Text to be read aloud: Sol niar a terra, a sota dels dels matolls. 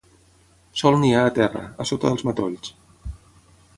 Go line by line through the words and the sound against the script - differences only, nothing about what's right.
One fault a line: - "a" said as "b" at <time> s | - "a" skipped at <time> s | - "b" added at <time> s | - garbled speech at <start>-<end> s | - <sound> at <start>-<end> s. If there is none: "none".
- "dels" skipped at 2.3 s